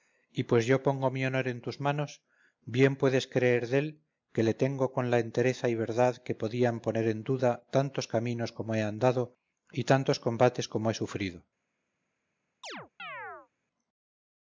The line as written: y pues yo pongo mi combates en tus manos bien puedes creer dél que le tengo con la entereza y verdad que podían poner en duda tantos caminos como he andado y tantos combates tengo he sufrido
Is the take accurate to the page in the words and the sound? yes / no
no